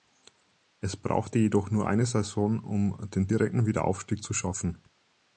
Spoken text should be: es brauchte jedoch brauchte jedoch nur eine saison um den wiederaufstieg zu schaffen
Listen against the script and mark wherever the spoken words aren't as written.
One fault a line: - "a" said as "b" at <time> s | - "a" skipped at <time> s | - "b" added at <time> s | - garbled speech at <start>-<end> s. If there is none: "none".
- "brauchte jedoch" skipped at 1.7 s
- "direkten" added at 3.2 s